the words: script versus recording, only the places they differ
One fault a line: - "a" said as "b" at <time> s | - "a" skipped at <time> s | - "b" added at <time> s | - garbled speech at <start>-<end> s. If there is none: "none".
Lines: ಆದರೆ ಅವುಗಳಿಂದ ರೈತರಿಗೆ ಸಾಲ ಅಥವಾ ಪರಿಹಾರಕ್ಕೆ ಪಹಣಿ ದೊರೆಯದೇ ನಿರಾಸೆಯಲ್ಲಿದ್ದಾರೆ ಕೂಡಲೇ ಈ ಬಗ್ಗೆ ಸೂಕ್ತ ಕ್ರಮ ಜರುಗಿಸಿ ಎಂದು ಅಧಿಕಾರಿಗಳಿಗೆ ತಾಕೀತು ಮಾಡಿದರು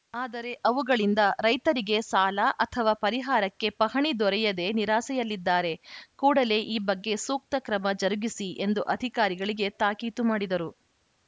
none